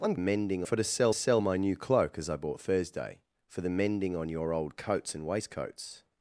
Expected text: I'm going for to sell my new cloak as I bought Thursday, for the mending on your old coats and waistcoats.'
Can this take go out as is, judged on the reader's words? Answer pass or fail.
fail